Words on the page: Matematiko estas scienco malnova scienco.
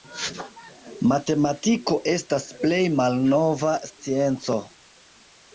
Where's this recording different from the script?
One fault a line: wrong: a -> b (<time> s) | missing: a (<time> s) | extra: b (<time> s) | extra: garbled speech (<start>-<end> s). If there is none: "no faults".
wrong: scienco -> plej (2.6 s)